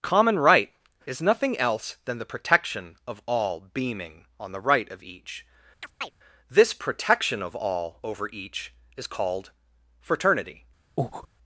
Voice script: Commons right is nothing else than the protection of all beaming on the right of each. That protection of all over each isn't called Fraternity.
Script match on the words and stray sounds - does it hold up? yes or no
no